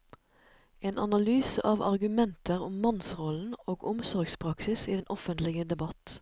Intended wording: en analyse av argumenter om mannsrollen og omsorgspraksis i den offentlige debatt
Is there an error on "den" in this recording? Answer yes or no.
no